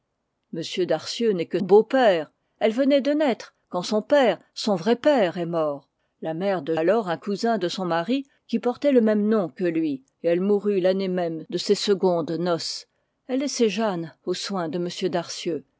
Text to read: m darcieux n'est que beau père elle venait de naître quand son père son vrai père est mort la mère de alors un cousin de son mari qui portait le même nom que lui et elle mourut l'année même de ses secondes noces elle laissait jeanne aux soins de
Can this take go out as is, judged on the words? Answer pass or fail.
pass